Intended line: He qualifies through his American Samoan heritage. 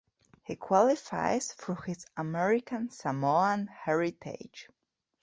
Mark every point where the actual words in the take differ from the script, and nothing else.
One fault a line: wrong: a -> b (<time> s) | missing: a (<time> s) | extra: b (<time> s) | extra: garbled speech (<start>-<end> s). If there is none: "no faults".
no faults